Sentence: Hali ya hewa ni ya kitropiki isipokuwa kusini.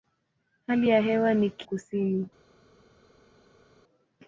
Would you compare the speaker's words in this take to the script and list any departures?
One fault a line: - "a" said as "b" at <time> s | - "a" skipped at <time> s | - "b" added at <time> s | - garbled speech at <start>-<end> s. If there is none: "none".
- "ya kitropiki isipokuwa" skipped at 1.5 s